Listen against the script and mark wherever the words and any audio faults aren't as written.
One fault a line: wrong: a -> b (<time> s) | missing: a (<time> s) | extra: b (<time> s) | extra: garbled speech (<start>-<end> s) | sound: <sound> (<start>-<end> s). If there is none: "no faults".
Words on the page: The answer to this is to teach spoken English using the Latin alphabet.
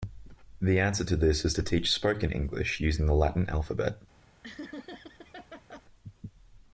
sound: laugh (4.4-5.8 s)